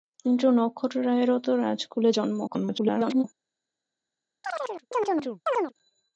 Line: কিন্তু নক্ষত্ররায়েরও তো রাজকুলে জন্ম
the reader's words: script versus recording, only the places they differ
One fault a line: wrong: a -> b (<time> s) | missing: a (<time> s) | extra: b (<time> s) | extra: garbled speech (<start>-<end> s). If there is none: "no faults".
extra: garbled speech (2.5-3.2 s)